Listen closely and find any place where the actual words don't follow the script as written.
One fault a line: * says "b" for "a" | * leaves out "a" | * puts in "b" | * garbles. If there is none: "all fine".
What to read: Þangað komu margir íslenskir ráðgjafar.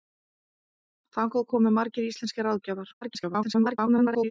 * garbles